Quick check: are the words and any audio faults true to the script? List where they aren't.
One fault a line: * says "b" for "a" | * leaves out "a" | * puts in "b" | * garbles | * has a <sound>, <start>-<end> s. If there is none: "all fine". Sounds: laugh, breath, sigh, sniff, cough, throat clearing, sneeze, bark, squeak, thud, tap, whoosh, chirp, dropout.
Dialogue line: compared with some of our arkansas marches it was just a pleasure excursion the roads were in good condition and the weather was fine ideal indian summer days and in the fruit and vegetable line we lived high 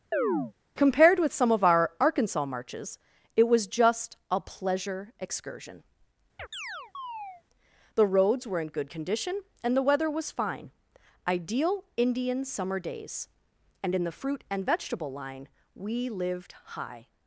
* has a chirp, 0.1-0.5 s
* has a chirp, 6.4-7.4 s